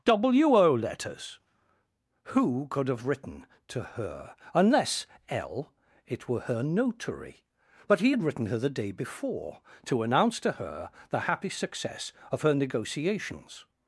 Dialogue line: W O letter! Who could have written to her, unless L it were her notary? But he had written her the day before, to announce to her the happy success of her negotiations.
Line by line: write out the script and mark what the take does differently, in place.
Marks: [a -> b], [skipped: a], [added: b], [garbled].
W O [letter! -> letters] Who could have written to her, unless L it were her notary? But he had written her the day before, to announce to her the happy success of her negotiations.